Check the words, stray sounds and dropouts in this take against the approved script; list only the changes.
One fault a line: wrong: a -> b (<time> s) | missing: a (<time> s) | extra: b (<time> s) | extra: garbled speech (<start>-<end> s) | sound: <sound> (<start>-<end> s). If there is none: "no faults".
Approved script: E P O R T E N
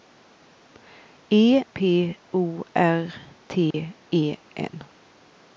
sound: dropout (3.7-3.7 s)